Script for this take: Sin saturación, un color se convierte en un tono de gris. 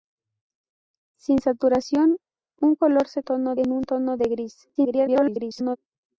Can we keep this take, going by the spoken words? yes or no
no